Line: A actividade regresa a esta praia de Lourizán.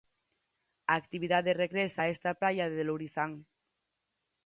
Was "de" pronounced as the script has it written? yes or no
yes